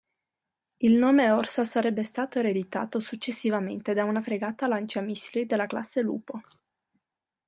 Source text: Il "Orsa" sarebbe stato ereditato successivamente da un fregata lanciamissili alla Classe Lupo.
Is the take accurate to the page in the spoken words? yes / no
no